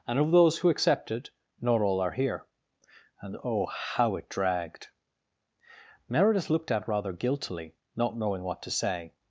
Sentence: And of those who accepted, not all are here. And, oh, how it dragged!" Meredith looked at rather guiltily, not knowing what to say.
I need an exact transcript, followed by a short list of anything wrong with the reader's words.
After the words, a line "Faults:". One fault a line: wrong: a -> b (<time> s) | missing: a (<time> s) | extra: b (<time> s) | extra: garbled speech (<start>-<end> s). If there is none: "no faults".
And of those who accepted, not all are here. And, oh, how it dragged!" Meredith looked at rather guiltily, not knowing what to say.
Faults:
no faults